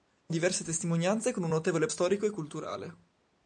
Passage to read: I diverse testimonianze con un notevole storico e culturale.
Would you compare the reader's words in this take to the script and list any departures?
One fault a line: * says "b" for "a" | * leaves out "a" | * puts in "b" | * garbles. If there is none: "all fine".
all fine